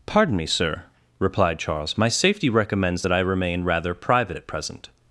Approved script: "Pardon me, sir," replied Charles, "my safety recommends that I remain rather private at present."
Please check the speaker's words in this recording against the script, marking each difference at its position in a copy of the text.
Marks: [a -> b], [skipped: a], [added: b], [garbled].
"Pardon me, sir," replied Charles, "my safety recommends that I remain rather private at present."